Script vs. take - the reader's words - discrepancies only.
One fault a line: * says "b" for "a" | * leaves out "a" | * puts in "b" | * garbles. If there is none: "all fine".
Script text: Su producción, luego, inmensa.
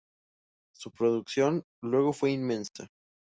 * puts in "fue"